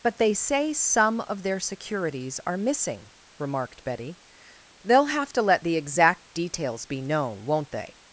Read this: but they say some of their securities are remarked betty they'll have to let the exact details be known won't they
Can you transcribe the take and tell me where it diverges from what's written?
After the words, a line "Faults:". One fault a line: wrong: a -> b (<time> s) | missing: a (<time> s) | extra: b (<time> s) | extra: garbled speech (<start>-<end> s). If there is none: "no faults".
but they say some of their securities are missing remarked betty they'll have to let the exact details be known won't they
Faults:
extra: missing (2.6 s)